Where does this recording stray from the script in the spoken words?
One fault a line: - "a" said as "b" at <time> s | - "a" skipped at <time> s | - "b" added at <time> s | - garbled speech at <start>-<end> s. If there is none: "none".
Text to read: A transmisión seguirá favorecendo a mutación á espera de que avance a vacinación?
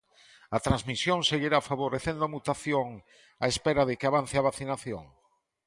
none